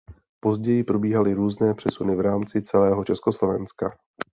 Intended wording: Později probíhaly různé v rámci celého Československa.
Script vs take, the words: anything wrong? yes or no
yes